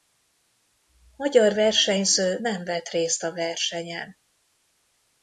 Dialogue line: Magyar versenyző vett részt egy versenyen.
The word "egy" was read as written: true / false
false